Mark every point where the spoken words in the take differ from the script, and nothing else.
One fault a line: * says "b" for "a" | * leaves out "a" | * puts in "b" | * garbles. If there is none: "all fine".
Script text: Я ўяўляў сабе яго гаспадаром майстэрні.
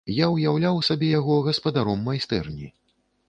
all fine